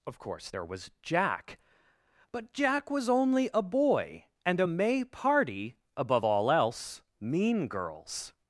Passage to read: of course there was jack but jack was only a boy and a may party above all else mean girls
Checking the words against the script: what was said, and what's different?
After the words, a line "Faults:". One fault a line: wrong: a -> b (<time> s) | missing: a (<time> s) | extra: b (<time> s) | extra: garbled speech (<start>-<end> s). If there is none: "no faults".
of course there was jack but jack was only a boy and a may party above all else mean girls
Faults:
no faults